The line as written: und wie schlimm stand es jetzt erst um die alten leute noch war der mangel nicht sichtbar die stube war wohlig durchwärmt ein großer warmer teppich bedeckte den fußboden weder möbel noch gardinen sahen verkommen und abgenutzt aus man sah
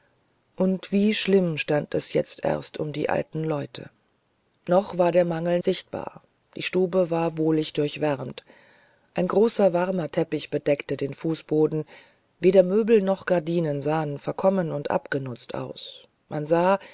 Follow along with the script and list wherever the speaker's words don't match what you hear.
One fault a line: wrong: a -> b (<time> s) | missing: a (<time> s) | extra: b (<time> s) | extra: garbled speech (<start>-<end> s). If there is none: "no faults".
missing: nicht (5.6 s)